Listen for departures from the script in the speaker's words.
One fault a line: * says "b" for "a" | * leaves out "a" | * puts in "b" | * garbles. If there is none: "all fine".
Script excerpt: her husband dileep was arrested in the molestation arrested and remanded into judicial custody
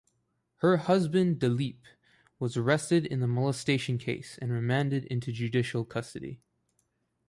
* says "case" for "arrested"